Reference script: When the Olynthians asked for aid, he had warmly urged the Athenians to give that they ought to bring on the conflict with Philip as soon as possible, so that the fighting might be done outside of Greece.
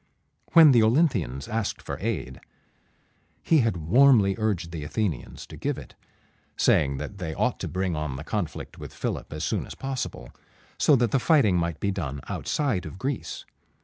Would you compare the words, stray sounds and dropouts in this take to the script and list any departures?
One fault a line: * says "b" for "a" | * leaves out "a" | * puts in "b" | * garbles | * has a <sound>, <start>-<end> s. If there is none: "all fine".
* puts in "it saying"